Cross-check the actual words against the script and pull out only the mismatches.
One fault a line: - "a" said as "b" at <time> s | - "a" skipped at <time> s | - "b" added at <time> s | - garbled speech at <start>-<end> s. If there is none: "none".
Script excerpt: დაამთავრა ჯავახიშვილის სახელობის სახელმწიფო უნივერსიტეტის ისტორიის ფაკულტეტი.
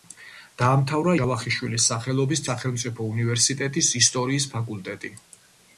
none